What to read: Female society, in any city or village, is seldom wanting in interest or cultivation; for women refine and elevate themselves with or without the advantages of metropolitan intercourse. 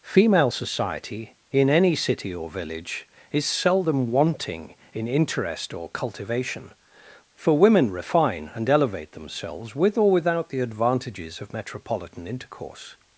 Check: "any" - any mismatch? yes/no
no